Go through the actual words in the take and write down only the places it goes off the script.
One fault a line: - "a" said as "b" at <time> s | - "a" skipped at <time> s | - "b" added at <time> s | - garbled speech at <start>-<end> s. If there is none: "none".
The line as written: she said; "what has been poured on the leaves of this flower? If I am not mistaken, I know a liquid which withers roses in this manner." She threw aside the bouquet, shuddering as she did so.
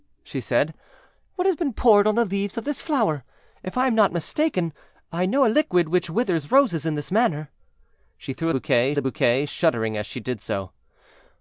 - "aside" said as "bouquet" at 8.5 s